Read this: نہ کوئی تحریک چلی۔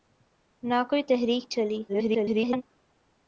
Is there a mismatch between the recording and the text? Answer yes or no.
yes